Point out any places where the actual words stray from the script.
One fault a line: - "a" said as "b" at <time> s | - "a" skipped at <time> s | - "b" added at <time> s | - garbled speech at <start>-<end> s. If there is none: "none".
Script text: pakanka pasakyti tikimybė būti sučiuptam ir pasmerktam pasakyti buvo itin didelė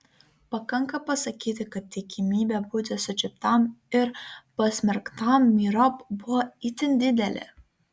- "kad" added at 1.8 s
- "pasakyti" said as "myriop" at 5.6 s